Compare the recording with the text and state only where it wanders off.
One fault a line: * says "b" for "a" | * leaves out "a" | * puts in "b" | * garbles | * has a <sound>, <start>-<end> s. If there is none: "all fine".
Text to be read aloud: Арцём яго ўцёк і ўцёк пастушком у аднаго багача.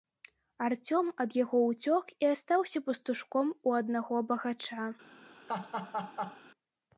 * puts in "ад"
* says "астаўся" for "ўцёк"
* has a laugh, 5.5-6.4 s